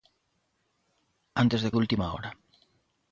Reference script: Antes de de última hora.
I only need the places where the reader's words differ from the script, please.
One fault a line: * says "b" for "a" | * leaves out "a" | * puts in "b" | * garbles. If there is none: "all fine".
all fine